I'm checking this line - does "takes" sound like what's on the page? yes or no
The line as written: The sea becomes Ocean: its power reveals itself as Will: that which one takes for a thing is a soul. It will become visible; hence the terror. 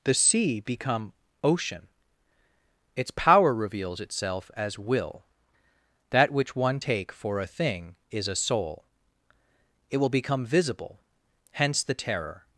no